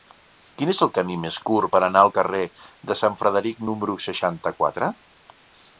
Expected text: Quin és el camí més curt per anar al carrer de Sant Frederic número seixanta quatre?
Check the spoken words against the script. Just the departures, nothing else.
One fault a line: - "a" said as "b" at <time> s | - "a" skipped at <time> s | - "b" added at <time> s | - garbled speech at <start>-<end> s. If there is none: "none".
none